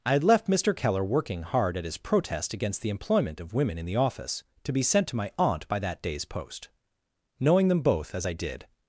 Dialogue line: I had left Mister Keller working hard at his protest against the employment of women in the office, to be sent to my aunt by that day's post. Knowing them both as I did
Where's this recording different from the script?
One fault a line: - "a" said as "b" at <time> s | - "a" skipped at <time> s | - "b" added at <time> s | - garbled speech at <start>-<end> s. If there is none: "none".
none